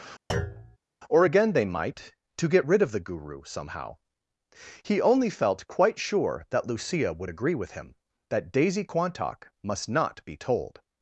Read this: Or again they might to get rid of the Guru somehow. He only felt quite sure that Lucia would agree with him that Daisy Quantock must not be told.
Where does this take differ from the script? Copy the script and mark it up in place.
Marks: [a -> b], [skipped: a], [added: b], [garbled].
Or again they might to get rid of the Guru somehow. He only felt quite sure that Lucia would agree with him that Daisy Quantock must not be told.